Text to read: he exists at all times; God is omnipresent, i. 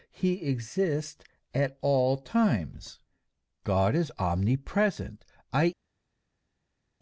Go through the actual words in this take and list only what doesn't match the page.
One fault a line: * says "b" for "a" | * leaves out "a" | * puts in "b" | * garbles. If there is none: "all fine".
all fine